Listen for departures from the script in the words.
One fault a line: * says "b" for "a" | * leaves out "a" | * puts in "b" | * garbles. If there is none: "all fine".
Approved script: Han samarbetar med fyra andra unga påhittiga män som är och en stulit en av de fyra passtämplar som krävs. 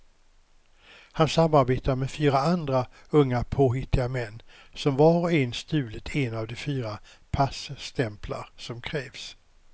* says "var" for "är"